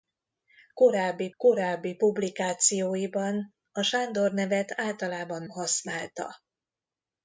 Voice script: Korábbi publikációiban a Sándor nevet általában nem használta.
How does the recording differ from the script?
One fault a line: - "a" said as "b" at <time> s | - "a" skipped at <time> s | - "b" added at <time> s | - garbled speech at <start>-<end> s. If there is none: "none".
- "korábbi" added at 1.4 s
- "nem" skipped at 5.4 s